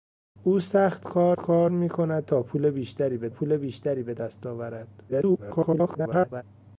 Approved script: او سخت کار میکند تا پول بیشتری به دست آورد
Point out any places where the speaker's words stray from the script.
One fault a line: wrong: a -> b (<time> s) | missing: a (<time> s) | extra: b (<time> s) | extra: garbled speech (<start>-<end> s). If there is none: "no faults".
extra: کار (1.4 s)
extra: پول بیشتری به (3.3 s)
extra: garbled speech (5.1-6.4 s)